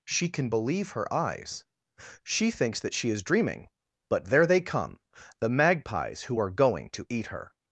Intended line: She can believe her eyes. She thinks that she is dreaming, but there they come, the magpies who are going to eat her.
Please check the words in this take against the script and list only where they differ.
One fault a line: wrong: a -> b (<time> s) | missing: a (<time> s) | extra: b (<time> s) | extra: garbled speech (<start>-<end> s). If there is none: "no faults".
no faults